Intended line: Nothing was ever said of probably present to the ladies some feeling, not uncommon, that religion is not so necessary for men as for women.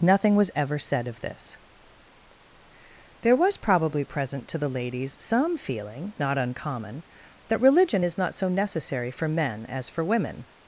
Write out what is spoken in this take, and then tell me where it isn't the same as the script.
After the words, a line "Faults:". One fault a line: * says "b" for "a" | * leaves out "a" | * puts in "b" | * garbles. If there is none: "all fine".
Nothing was ever said of this. There was probably present to the ladies some feeling, not uncommon, that religion is not so necessary for men as for women.
Faults:
* puts in "this There was"